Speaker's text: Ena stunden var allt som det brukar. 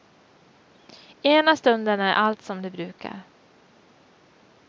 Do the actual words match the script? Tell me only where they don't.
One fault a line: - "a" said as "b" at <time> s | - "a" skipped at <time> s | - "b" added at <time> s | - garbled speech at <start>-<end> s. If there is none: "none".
- "var" said as "är" at 2.0 s